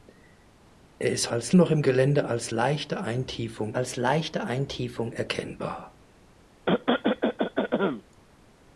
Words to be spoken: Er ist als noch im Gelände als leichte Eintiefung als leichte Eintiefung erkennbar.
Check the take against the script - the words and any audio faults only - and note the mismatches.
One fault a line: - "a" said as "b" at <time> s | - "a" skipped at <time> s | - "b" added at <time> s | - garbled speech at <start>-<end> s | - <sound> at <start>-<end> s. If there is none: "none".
- cough at 6.7-8.0 s